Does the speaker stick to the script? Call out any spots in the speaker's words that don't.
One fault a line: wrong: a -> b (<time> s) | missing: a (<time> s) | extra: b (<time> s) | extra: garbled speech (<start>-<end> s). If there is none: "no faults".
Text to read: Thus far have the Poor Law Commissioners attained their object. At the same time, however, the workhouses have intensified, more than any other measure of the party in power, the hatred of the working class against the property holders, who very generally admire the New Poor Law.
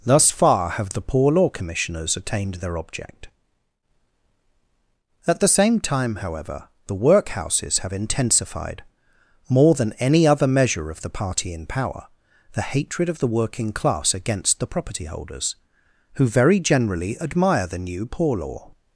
no faults